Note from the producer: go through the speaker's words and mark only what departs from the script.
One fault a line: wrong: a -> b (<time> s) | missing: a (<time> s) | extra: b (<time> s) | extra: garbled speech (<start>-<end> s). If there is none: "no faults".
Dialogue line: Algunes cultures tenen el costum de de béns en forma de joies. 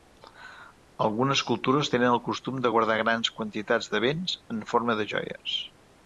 extra: guardar grans quantitats (2.7 s)